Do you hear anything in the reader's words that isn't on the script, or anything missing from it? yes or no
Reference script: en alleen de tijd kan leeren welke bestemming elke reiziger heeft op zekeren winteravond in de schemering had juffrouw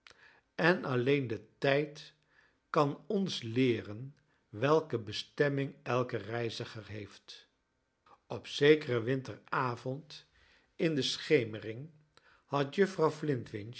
yes